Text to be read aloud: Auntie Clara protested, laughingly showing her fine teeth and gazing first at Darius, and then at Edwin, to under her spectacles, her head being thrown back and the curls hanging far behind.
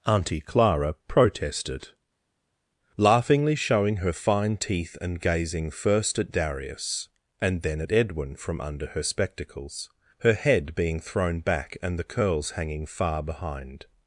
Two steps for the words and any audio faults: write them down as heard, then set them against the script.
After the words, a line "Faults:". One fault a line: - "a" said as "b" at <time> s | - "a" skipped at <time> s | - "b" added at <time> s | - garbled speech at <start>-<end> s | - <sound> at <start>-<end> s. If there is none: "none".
Auntie Clara protested, laughingly showing her fine teeth and gazing first at Darius, and then at Edwin, from under her spectacles, her head being thrown back and the curls hanging far behind.
Faults:
- "to" said as "from" at 8.4 s